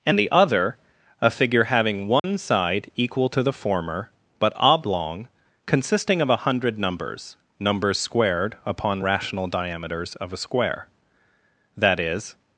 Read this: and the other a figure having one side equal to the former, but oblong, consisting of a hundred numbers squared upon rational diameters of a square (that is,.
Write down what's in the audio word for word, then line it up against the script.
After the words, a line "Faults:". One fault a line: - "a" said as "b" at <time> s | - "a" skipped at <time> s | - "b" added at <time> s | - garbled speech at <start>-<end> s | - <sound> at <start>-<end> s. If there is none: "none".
and the other a figure having one side equal to the former, but oblong, consisting of a hundred numbers numbers squared upon rational diameters of a square (that is,.
Faults:
- dropout at 2.2-2.2 s
- "numbers" added at 7.6 s